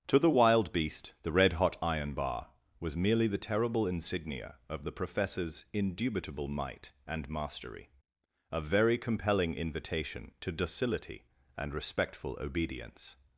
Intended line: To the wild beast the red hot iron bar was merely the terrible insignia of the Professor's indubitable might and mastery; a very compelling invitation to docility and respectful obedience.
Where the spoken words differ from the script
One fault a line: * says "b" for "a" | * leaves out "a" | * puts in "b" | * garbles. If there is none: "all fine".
all fine